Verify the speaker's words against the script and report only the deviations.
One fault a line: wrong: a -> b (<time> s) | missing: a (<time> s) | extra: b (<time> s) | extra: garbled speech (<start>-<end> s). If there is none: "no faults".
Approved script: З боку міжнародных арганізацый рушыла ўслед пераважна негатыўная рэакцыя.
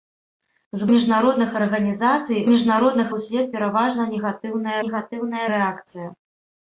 missing: боку (0.8 s)
wrong: рушыла -> міжнародных (2.5 s)
extra: негатыўная (4.9 s)